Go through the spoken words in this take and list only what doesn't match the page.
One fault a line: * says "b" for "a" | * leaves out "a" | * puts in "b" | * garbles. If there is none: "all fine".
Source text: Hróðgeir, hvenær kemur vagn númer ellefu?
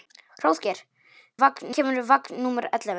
* says "vagn" for "hvenær"